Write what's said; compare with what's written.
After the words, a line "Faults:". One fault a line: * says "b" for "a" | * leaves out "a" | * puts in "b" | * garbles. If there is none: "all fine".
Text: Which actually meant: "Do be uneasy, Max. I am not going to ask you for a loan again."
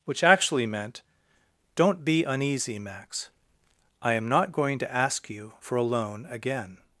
Which actually meant: "Don't be uneasy, Max. I am not going to ask you for a loan again."
Faults:
* says "Don't" for "Do"